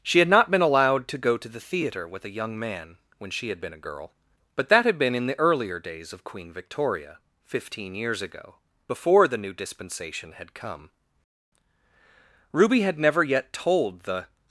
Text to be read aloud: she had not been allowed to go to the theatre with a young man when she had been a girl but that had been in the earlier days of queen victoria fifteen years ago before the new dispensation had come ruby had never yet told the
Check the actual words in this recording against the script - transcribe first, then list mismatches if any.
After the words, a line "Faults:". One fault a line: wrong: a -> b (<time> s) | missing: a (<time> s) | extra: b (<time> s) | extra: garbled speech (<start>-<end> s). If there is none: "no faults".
she had not been allowed to go to the theatre with a young man when she had been a girl but that had been in the earlier days of queen victoria fifteen years ago before the new dispensation had come ruby had never yet told the
Faults:
no faults